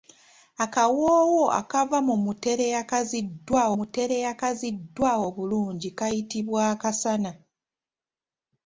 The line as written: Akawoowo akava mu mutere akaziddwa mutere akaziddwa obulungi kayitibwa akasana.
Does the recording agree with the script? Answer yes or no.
yes